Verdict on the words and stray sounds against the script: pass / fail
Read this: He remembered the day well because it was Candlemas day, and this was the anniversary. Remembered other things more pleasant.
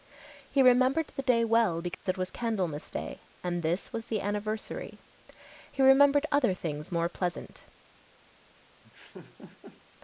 fail